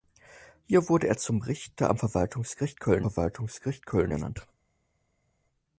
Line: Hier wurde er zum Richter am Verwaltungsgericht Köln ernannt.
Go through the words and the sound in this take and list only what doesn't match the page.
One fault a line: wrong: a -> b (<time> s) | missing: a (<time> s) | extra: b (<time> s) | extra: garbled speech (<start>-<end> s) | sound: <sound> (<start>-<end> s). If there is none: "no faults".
extra: Verwaltungsgericht Köln (3.0 s)